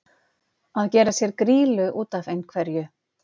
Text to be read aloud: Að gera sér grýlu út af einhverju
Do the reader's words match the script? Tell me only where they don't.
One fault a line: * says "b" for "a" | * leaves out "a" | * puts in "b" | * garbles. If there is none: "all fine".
all fine